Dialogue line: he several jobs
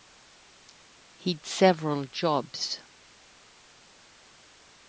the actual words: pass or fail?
pass